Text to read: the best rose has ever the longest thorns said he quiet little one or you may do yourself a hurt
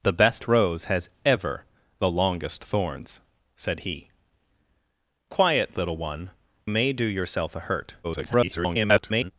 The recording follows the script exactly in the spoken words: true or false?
false